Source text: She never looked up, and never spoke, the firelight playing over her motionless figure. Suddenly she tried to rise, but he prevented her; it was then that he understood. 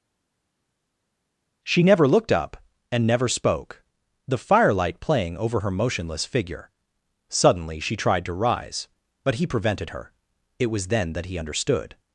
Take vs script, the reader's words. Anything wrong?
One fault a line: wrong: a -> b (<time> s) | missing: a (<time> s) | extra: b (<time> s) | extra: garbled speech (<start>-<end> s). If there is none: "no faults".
no faults